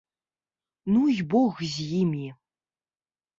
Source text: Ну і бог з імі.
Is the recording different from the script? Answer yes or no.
no